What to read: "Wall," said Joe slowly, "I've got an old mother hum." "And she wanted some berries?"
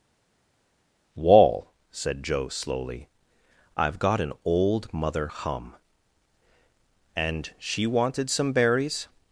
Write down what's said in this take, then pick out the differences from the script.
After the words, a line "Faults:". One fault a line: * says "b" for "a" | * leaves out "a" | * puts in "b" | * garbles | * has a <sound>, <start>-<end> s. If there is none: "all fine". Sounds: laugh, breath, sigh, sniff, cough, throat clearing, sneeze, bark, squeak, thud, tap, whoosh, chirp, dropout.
"Wall," said Joe slowly, "I've got an old mother hum." "And she wanted some berries?"
Faults:
all fine